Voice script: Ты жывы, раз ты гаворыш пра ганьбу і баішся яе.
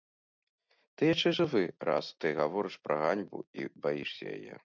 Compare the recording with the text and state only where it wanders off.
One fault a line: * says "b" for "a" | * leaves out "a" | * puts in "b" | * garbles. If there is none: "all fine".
* puts in "яшчэ"